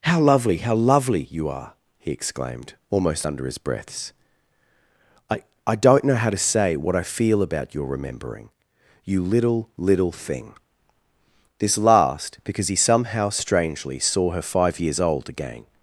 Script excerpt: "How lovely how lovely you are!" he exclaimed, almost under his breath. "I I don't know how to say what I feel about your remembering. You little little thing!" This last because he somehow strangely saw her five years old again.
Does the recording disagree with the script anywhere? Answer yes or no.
yes